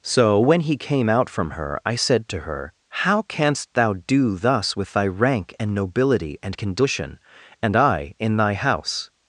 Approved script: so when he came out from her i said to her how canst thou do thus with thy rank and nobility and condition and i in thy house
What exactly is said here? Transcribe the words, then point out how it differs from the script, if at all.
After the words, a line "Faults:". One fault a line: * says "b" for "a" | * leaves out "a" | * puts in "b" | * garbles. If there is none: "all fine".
so when he came out from her i said to her how canst thou do thus with thy rank and nobility and condition and i in thy house
Faults:
all fine